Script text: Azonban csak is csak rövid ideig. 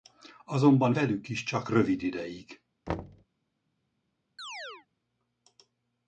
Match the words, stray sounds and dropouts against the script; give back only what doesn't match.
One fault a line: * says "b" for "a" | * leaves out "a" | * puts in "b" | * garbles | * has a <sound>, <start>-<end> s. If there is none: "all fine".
* says "velük" for "csak"
* has a thud, 2.9-3.3 s
* has a chirp, 4.4-4.9 s